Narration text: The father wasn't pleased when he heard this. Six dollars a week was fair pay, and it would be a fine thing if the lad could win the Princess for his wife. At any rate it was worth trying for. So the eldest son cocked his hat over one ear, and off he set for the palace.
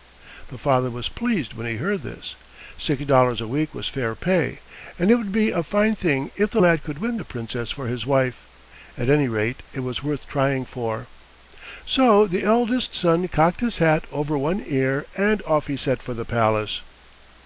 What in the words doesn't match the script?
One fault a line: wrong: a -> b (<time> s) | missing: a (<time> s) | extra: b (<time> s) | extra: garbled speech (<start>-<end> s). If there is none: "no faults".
wrong: wasn't -> was (0.9 s)